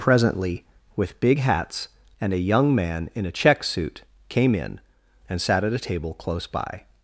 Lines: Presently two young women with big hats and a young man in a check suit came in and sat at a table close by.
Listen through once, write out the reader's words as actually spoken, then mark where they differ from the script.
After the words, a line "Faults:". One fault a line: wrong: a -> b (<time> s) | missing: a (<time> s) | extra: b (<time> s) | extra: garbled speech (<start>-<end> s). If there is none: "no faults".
Presently with big hats and a young man in a check suit came in and sat at a table close by.
Faults:
missing: two young women (0.7 s)